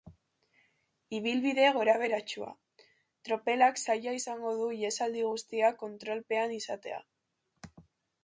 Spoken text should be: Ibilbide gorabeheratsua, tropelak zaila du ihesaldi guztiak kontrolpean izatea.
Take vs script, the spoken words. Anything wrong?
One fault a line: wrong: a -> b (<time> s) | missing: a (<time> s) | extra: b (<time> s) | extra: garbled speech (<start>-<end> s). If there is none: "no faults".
extra: izango (4.2 s)